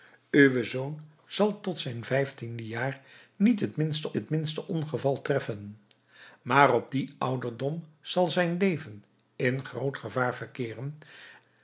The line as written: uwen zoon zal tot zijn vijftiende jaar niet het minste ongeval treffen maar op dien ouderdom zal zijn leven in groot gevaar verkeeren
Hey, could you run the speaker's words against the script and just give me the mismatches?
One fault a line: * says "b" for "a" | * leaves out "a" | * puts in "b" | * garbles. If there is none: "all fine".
* puts in "het minste"